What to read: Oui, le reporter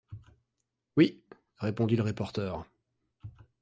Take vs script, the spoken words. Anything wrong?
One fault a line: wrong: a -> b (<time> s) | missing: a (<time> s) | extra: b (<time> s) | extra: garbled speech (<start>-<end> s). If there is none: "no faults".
extra: répondit (1.6 s)